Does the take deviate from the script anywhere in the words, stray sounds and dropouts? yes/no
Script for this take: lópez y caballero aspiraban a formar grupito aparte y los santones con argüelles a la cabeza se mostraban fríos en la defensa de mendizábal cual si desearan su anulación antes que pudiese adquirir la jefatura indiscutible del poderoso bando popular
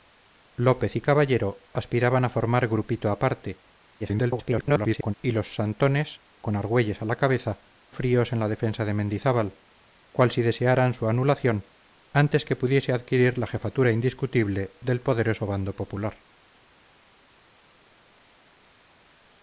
yes